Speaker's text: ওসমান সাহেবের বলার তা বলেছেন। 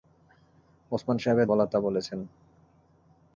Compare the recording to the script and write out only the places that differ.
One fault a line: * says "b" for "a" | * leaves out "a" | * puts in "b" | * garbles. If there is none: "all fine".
all fine